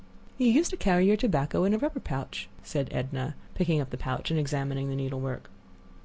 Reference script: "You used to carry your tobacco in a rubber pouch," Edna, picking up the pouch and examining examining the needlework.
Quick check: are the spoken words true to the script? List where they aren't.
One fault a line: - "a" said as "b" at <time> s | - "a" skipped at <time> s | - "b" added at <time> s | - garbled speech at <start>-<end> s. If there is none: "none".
- "said" added at 2.6 s
- "examining" skipped at 4.9 s